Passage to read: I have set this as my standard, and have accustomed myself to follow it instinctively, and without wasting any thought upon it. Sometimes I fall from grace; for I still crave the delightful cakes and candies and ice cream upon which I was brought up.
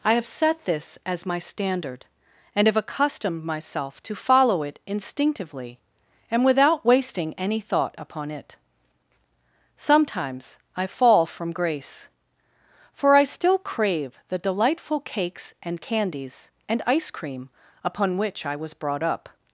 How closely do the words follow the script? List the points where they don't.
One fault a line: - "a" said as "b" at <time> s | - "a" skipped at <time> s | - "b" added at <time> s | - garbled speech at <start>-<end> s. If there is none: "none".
none